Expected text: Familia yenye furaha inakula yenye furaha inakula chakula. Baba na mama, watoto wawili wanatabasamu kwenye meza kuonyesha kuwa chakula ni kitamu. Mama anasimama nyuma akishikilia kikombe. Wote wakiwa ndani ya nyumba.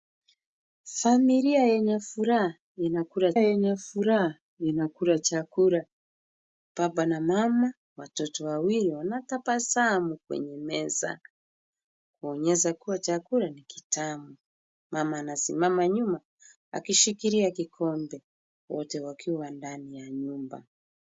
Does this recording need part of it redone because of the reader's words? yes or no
no